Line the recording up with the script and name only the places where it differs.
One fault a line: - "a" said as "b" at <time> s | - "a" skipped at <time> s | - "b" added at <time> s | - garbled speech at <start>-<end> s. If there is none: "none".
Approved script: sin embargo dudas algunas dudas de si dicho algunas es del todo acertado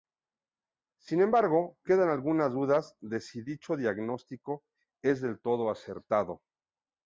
- "dudas" said as "quedan" at 1.8 s
- "algunas" said as "diagnóstico" at 3.8 s